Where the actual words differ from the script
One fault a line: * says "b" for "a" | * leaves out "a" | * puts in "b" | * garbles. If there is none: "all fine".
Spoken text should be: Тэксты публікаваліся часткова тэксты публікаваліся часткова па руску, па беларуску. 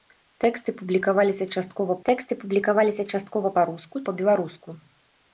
all fine